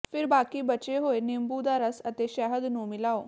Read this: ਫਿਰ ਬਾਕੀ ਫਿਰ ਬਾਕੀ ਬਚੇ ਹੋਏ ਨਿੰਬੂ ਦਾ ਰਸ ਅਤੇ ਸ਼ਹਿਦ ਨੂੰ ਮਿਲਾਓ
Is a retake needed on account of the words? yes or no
yes